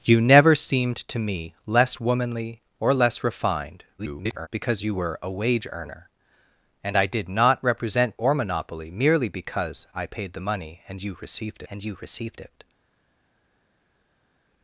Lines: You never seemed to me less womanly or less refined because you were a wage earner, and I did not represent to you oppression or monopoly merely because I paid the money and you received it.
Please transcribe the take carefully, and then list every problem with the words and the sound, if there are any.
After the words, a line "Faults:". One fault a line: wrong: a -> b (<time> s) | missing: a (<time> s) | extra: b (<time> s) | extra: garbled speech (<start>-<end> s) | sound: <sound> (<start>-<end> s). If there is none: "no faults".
You never seemed to me less womanly or less refined [garbled] because you were a wage earner, and I did not represent or monopoly merely because I paid the money and you received and you received it.
Faults:
extra: garbled speech (4.0-4.5 s)
missing: to you oppression (8.2 s)
extra: and you received (11.7 s)